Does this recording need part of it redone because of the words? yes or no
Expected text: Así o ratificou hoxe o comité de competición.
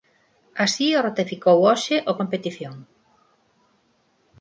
yes